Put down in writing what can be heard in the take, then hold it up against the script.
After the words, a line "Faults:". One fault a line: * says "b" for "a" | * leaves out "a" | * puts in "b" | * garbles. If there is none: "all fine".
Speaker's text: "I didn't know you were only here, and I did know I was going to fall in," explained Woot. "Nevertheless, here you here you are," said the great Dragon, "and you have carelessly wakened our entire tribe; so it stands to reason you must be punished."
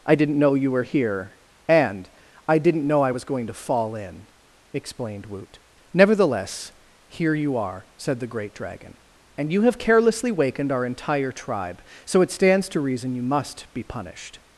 "I didn't know you were here, and I didn't know I was going to fall in," explained Woot. "Nevertheless, here you are," said the great Dragon, "and you have carelessly wakened our entire tribe; so it stands to reason you must be punished."
Faults:
* leaves out "only"
* says "didn't" for "did"
* leaves out "here you"